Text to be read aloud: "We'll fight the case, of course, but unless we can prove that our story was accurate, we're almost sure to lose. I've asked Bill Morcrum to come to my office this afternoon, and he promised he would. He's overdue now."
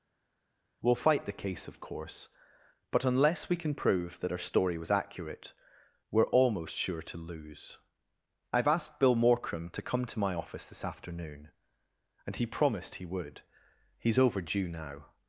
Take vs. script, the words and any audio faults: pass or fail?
pass